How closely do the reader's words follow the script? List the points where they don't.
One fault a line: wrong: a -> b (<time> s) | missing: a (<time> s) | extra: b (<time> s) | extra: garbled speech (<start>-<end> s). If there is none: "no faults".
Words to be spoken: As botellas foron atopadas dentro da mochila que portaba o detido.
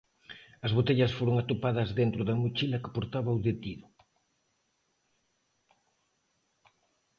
no faults